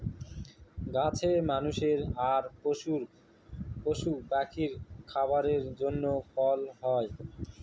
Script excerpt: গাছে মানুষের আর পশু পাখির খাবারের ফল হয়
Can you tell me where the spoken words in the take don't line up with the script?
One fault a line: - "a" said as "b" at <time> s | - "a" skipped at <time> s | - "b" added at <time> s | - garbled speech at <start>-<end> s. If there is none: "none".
- "জন্য" added at 5.8 s